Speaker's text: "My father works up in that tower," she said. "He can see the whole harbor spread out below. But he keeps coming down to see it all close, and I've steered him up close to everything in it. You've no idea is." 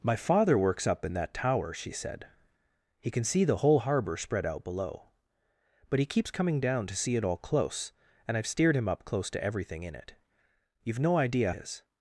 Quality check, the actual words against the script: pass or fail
pass